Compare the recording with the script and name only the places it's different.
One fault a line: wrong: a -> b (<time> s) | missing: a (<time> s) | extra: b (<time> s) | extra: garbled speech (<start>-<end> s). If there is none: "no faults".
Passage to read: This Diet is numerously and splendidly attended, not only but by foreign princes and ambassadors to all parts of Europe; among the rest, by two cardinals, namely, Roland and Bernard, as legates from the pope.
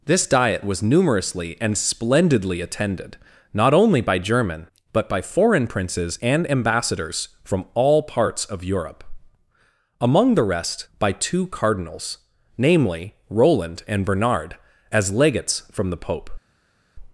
wrong: is -> was (0.6 s)
extra: by German (4.0 s)
wrong: to -> from (7.4 s)